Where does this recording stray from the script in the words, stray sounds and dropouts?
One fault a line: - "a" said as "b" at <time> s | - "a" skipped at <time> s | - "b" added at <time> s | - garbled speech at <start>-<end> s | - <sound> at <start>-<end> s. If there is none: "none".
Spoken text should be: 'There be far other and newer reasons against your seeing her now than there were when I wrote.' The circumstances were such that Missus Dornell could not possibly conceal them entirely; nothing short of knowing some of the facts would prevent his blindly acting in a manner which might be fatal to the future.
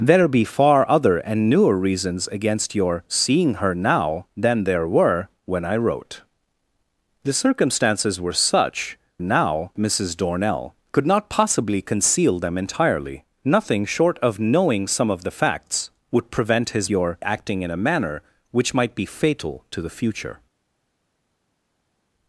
- "that" said as "now" at 9.2 s
- "blindly" said as "your" at 16.9 s